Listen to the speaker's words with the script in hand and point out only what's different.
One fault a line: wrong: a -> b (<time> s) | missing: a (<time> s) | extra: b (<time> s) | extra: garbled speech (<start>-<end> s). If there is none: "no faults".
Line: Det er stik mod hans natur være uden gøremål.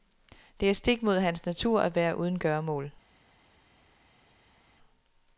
extra: at (1.8 s)